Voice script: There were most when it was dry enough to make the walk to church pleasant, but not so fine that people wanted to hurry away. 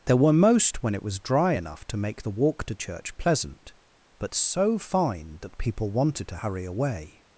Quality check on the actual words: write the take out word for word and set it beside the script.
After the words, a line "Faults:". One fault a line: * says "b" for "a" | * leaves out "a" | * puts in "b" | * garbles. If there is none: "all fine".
There were most when it was dry enough to make the walk to church pleasant, but so fine that people wanted to hurry away.
Faults:
* leaves out "not"